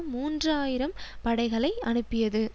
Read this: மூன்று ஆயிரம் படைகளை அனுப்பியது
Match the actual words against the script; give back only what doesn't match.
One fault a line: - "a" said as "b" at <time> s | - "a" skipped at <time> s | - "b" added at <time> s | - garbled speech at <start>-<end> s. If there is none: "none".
none